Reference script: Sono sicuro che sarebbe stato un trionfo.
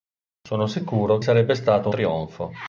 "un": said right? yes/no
no